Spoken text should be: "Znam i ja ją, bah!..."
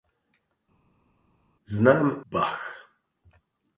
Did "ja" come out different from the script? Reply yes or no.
yes